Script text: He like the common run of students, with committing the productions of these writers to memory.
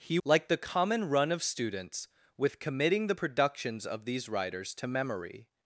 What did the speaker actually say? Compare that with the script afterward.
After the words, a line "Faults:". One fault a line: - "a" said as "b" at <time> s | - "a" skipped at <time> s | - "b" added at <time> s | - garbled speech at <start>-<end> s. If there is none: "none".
He like the common run of students, with committing the productions of these writers to memory.
Faults:
none